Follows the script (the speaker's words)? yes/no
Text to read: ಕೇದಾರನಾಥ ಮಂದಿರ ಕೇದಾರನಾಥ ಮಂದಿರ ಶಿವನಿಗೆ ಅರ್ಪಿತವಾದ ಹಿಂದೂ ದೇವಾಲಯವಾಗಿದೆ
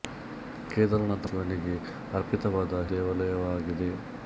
no